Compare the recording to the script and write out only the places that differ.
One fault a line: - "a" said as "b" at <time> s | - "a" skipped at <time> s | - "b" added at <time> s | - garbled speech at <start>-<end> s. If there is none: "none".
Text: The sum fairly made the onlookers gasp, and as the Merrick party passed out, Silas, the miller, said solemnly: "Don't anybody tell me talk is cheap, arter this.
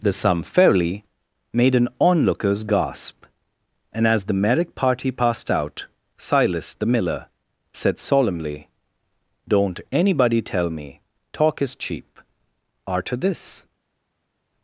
- "the" said as "an" at 1.8 s